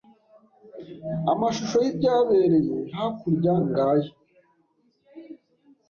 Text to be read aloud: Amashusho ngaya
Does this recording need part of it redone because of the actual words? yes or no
yes